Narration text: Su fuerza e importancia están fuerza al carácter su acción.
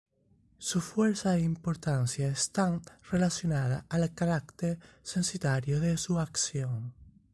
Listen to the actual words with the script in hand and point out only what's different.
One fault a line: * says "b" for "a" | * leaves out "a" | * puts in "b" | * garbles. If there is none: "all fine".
* says "relacionadas" for "fuerza"
* puts in "censitario de"